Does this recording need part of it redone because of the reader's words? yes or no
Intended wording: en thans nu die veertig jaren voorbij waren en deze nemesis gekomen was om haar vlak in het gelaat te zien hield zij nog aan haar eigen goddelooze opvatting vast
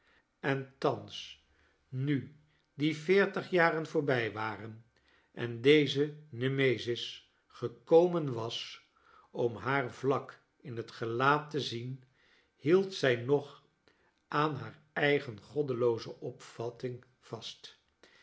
no